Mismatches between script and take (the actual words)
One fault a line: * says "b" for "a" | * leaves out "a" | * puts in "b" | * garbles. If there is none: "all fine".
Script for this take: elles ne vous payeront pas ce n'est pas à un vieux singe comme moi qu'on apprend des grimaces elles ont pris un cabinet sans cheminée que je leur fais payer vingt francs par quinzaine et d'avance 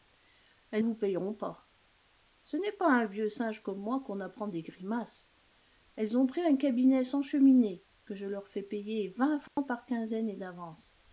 * leaves out "ne"